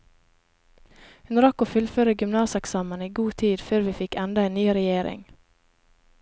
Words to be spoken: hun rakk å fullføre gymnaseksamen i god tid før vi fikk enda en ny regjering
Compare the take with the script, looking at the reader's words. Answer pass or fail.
pass